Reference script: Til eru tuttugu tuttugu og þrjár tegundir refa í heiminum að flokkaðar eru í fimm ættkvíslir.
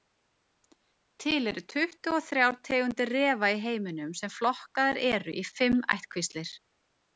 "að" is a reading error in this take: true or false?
true